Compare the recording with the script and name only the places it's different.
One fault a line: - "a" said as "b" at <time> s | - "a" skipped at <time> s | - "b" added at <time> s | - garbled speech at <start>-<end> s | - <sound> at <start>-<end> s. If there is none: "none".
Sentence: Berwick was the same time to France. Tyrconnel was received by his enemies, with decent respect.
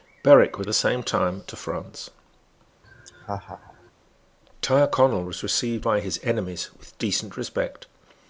- laugh at 2.8-3.9 s